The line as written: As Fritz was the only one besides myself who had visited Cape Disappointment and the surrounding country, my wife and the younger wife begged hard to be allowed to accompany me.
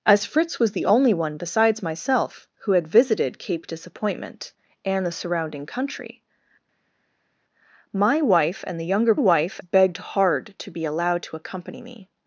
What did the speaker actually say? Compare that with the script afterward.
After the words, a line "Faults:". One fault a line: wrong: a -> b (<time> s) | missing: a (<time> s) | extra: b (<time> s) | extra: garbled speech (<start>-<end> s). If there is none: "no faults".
As Fritz was the only one besides myself who had visited Cape Disappointment and the surrounding country, my wife and the younger wife begged hard to be allowed to accompany me.
Faults:
no faults